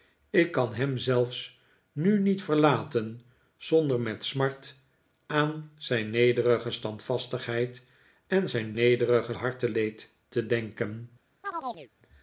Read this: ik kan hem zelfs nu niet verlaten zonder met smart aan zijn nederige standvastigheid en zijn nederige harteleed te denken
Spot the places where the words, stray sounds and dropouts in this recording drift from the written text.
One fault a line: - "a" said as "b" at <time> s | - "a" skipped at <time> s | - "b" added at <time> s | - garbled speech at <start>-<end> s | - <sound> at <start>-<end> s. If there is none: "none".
- chirp at 11.4-11.9 s